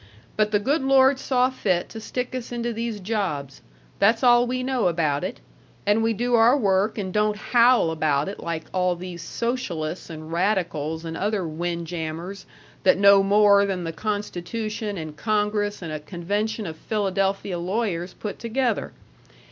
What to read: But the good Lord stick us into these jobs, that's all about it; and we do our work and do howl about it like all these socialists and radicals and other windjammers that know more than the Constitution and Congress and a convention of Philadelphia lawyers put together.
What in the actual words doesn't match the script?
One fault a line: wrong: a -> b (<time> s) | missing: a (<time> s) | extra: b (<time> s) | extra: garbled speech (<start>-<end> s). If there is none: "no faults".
extra: saw fit to (1.2 s)
extra: we know (4.5 s)
wrong: do -> don't (7.1 s)